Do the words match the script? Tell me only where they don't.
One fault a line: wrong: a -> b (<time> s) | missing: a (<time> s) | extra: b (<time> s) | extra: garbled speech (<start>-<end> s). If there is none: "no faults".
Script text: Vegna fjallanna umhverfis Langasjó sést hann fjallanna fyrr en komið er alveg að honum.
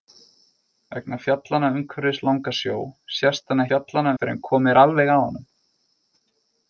no faults